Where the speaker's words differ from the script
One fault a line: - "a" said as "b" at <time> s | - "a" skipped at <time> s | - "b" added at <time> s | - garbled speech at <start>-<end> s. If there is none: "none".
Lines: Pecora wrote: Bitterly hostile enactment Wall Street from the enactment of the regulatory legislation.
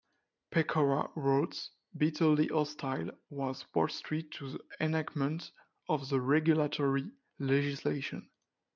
- "enactment" said as "was" at 3.3 s
- "from" said as "to" at 4.3 s